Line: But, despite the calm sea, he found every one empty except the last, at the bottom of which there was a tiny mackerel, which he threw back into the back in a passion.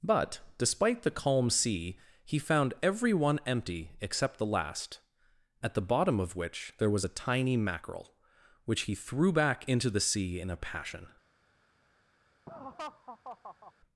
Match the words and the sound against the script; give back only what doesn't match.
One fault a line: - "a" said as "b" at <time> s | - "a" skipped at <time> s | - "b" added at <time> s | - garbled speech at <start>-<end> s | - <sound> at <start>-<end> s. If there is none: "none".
- "back" said as "sea" at 10.0 s
- laugh at 12.5-13.7 s